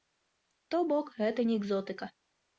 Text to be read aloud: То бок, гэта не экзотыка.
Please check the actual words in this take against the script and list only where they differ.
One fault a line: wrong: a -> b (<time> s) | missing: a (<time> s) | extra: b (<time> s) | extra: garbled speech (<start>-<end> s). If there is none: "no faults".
no faults